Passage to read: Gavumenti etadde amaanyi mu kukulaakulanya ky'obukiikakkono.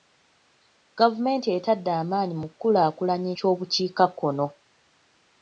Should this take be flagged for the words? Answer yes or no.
no